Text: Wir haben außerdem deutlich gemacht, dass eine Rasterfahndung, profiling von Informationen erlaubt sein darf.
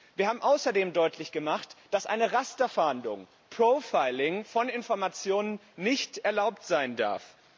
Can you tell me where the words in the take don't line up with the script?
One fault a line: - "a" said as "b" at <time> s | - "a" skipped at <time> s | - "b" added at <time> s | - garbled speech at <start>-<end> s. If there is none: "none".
- "nicht" added at 5.8 s